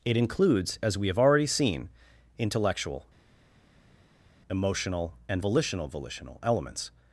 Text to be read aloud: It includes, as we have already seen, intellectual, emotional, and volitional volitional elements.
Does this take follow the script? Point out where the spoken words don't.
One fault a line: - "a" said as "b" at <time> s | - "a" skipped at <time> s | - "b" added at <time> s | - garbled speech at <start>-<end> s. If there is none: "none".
none